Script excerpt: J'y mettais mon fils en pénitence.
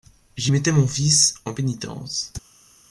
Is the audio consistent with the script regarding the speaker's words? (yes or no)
yes